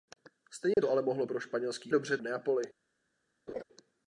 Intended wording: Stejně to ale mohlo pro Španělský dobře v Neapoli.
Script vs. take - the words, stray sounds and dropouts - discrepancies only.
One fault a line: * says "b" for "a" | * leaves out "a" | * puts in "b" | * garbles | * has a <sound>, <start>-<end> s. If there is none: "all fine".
* has a dropout, 0.7-0.8 s
* has a laugh, 3.5-3.6 s